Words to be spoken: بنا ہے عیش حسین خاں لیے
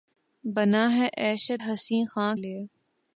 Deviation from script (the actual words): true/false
false